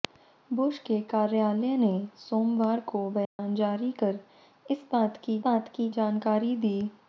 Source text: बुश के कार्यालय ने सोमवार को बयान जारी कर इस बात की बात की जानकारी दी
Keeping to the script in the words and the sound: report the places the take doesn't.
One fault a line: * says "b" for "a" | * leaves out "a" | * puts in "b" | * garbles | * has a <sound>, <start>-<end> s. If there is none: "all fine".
* has a dropout, 3.2-3.4 s